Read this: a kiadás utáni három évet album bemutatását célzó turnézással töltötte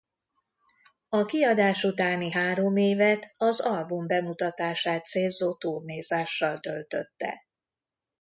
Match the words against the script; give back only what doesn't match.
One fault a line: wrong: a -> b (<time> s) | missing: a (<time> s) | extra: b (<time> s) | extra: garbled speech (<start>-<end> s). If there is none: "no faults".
extra: az (3.4 s)